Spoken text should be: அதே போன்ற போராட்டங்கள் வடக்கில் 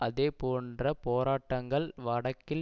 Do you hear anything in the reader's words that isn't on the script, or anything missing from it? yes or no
no